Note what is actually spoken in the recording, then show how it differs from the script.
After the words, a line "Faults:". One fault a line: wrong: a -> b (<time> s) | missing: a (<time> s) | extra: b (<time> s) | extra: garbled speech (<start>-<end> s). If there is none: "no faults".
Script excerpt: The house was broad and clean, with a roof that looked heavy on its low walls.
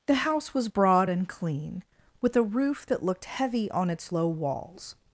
The house was broad and clean, with a roof that looked heavy on its low walls.
Faults:
no faults